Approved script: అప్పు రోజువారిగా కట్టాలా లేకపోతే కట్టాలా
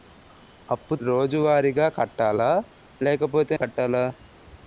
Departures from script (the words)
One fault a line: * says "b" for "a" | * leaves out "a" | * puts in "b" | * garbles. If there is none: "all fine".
all fine